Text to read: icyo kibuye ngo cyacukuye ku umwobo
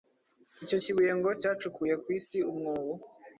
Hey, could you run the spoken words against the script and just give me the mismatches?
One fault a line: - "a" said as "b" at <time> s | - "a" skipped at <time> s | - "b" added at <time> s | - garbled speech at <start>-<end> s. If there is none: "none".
- "isi" added at 2.2 s